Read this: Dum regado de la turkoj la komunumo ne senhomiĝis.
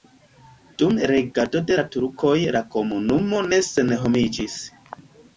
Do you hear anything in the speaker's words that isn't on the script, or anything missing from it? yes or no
no